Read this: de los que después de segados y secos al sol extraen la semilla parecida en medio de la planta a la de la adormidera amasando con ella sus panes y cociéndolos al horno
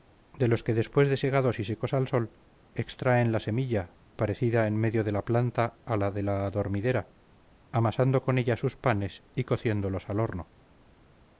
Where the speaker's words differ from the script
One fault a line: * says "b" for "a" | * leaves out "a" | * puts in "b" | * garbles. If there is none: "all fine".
all fine